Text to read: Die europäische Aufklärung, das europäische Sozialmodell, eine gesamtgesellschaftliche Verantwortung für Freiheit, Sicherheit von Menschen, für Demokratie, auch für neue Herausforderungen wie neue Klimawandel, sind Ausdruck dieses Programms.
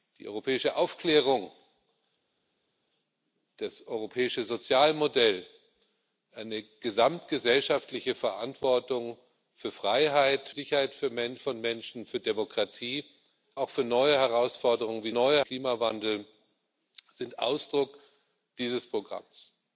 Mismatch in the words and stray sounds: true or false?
false